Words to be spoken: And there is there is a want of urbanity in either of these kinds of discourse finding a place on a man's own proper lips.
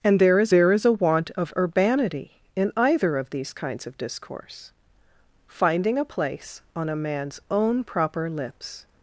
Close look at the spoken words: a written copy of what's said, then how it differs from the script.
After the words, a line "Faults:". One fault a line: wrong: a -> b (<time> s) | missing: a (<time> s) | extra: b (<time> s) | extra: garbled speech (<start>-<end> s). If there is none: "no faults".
And there is there is a want of urbanity in either of these kinds of discourse finding a place on a man's own proper lips.
Faults:
no faults